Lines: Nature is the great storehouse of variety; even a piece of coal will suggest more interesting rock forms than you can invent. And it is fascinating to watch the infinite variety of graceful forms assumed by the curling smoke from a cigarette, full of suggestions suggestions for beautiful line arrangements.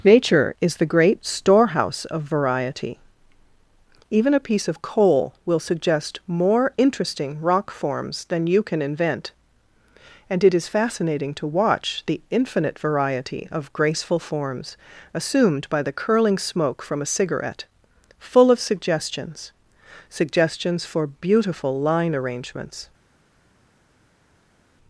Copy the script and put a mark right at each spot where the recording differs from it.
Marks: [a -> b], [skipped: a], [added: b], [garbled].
Nature is the great storehouse of variety; even a piece of coal will suggest more interesting rock forms than you can invent. And it is fascinating to watch the infinite variety of graceful forms assumed by the curling smoke from a cigarette, full of suggestions suggestions for beautiful line arrangements.